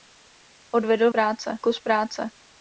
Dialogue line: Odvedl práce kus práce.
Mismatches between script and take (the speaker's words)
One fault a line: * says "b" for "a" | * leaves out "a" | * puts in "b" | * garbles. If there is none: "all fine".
all fine